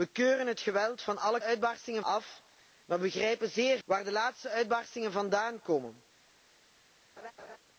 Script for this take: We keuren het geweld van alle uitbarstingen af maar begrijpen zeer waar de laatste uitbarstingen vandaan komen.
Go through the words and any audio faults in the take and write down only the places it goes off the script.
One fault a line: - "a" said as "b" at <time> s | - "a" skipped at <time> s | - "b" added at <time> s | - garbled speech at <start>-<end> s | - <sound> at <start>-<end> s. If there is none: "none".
- laugh at 7.2-7.6 s